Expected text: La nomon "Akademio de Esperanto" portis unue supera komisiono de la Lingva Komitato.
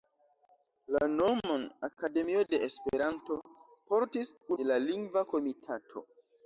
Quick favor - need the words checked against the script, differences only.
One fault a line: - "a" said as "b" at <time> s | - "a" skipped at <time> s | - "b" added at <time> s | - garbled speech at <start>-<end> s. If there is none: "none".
- "unue supera komisiono" skipped at 4.3 s